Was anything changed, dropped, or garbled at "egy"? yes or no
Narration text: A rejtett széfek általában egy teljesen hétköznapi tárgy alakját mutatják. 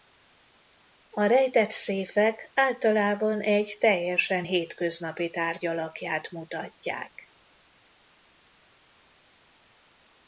no